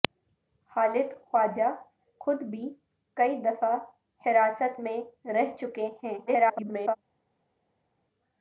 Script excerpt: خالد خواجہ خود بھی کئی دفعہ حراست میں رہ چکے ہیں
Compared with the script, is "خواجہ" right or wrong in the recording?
right